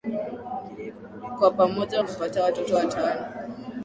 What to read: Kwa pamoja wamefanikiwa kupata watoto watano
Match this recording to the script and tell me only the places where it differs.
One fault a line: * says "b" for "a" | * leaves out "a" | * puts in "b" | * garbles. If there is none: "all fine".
* leaves out "wamefanikiwa"